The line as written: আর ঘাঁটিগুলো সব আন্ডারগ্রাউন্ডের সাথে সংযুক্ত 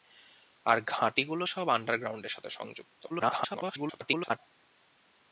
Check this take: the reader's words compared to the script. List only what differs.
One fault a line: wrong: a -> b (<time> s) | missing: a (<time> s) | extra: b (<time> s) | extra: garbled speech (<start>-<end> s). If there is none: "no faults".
extra: garbled speech (3.1-4.4 s)